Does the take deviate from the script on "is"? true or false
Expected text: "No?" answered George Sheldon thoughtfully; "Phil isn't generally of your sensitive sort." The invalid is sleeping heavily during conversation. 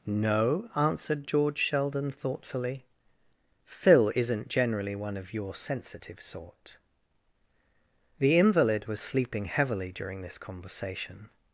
true